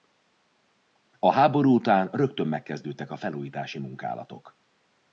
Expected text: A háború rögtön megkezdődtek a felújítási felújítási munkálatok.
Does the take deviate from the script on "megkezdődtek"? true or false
false